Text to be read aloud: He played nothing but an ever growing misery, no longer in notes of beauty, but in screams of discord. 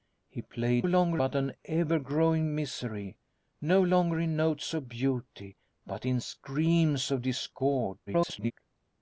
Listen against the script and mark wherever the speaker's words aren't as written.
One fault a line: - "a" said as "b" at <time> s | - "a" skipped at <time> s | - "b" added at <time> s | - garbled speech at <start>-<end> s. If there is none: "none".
- "nothing" said as "longer" at 0.8 s
- garbled speech at 8.1-8.5 s